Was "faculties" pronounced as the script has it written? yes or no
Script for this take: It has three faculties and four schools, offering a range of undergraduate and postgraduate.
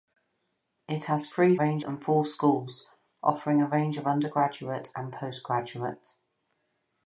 no